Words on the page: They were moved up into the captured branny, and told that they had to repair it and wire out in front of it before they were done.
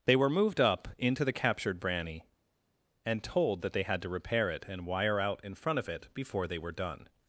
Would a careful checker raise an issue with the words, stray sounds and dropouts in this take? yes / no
no